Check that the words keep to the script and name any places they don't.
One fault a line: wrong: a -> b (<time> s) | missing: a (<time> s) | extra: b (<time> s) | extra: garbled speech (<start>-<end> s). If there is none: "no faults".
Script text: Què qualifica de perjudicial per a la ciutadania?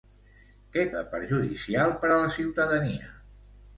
missing: qualifica (0.8 s)